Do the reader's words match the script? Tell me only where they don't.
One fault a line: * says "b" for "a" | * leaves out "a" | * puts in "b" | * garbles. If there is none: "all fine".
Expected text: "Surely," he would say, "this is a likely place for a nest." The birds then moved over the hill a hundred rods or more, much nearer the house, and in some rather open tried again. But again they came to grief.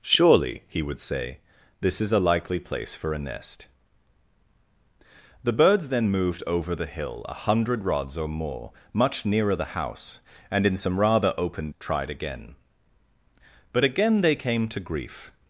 all fine